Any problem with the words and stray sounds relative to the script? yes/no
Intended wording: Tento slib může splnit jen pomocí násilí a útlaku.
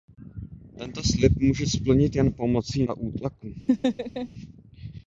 yes